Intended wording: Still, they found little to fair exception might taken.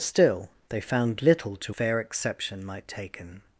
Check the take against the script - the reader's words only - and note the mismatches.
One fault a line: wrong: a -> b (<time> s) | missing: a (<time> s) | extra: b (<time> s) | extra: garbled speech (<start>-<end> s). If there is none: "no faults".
no faults